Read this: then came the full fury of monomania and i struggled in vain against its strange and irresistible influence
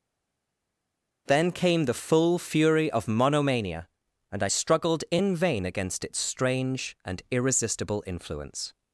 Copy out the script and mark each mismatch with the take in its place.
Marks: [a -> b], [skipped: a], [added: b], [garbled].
then came the full fury of monomania and i struggled in vain against its strange and irresistible influence